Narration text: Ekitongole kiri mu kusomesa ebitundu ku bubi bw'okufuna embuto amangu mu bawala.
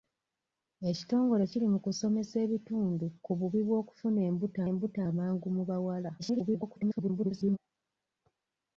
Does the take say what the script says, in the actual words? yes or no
no